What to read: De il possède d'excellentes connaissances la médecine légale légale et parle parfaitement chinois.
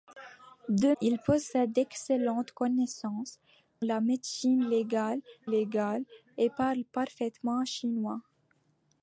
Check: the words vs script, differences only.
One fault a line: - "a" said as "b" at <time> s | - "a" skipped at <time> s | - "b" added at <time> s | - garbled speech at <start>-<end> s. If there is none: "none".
none